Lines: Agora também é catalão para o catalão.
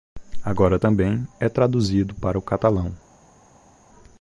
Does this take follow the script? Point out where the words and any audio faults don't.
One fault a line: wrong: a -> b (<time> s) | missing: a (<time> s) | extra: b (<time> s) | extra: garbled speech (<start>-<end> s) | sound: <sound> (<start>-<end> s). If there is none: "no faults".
wrong: catalão -> traduzido (1.5 s)